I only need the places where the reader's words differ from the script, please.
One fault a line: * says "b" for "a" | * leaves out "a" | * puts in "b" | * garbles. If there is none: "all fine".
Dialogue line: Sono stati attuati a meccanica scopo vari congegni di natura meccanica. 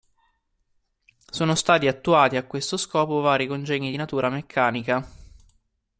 * says "questo" for "meccanica"